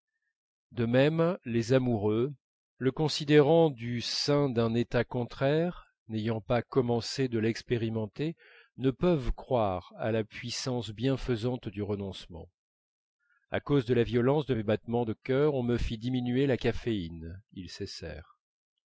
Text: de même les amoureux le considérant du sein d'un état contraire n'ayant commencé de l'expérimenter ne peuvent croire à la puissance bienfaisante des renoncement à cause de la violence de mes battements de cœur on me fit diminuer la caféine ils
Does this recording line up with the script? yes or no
no